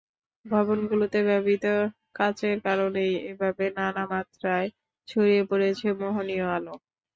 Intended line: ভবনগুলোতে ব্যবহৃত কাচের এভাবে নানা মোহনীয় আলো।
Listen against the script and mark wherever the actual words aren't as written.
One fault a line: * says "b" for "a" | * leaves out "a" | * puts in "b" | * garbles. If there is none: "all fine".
* puts in "কারণেই"
* puts in "মাত্রায় ছড়িয়ে পড়েছে"